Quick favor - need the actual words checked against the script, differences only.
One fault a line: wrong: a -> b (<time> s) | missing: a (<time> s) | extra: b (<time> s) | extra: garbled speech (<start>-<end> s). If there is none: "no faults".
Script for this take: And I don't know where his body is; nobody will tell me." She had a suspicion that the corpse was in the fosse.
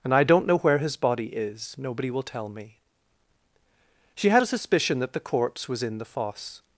no faults